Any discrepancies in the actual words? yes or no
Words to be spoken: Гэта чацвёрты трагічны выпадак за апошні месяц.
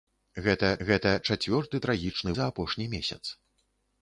yes